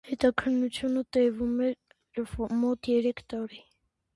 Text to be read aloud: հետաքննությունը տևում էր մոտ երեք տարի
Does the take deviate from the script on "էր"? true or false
false